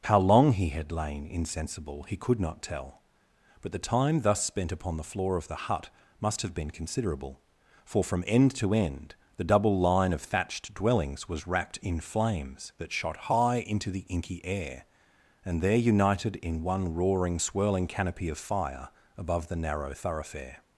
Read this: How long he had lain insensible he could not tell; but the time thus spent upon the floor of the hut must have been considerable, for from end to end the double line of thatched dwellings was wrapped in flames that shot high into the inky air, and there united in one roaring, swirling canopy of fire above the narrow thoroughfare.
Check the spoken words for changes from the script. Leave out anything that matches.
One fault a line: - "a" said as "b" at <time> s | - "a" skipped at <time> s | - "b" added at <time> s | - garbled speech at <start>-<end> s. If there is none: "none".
none